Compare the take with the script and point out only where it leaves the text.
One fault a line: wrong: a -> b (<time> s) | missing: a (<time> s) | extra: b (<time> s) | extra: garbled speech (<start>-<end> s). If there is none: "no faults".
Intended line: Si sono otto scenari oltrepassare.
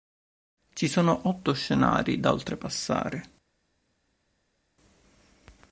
wrong: Si -> Ci (0.7 s)
extra: da (2.2 s)